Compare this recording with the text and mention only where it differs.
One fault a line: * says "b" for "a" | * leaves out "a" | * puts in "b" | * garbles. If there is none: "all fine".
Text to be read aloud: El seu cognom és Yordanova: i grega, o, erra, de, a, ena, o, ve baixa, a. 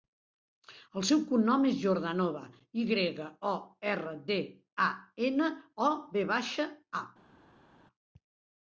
all fine